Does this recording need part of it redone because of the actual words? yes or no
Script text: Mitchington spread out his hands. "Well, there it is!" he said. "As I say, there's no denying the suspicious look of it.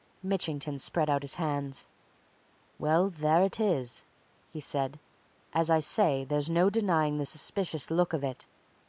no